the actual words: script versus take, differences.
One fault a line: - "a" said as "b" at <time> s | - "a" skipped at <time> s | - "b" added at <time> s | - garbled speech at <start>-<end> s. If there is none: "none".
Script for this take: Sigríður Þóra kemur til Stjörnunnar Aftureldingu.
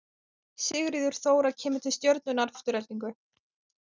none